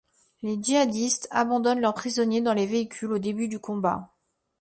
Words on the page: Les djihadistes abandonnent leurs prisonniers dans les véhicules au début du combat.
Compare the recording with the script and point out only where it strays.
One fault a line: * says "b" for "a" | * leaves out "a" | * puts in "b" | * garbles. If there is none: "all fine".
all fine